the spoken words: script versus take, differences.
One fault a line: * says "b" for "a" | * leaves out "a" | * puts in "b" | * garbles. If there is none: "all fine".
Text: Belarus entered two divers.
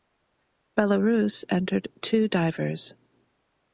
all fine